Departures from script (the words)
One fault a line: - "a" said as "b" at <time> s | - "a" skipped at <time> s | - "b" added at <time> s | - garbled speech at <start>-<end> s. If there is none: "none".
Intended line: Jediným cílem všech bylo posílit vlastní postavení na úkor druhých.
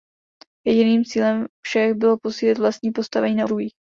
- "úkor" skipped at 3.5 s